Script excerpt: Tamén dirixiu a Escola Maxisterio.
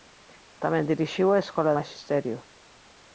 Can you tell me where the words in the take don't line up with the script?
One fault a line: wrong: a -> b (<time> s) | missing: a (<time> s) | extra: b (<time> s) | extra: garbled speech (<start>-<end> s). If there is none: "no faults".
no faults